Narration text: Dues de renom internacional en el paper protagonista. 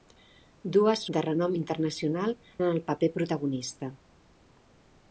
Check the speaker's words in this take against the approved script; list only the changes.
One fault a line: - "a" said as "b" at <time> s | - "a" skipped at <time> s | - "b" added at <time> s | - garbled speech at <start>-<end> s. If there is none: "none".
none